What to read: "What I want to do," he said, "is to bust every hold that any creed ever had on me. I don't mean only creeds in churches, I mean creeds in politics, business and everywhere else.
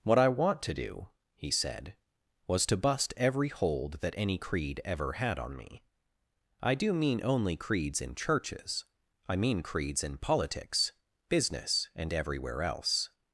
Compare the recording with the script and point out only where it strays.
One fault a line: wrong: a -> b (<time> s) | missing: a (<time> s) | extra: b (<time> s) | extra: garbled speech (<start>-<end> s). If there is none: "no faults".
wrong: is -> was (2.5 s)
wrong: don't -> do (6.8 s)